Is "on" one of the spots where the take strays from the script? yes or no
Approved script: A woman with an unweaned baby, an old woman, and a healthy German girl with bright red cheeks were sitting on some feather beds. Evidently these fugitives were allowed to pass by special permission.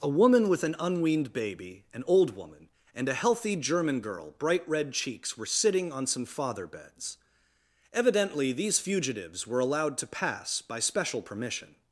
no